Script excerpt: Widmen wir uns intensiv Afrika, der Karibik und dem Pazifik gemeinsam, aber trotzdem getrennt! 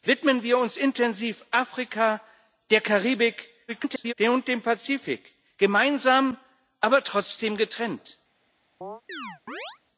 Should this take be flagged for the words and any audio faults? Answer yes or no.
yes